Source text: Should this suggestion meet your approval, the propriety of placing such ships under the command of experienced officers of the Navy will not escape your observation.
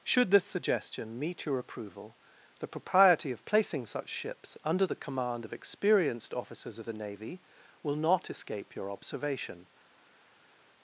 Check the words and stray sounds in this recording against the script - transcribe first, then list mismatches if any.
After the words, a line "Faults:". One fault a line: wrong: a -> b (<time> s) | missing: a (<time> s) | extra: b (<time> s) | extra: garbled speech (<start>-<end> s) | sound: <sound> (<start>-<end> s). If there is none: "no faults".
Should this suggestion meet your approval, the propriety of placing such ships under the command of experienced officers of the Navy will not escape your observation.
Faults:
no faults